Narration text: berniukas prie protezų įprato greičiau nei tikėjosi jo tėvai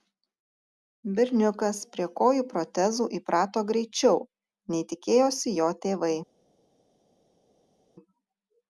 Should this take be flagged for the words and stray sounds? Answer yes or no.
yes